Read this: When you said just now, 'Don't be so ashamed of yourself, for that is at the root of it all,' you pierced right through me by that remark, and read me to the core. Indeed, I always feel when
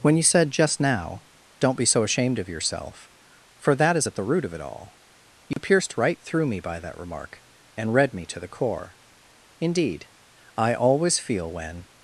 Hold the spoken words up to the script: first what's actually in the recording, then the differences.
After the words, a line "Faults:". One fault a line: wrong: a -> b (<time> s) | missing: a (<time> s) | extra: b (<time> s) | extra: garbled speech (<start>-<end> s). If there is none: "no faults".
When you said just now, 'Don't be so ashamed of yourself, for that is at the root of it all,' you pierced right through me by that remark, and read me to the core. Indeed, I always feel when
Faults:
no faults